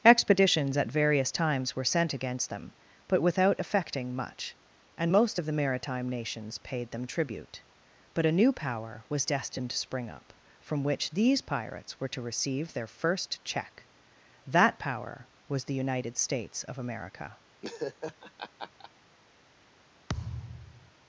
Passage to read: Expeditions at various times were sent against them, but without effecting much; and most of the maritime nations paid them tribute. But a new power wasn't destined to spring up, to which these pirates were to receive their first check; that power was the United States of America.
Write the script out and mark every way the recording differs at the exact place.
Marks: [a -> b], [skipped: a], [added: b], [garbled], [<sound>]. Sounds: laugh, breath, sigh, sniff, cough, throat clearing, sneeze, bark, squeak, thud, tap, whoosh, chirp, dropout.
Expeditions at various times were sent against them, but without effecting much; and most of the maritime nations paid them tribute. But a new power [wasn't -> was] destined to spring up, [to -> from] which these pirates were to receive their first check; that power was the United States of America. [laugh] [thud]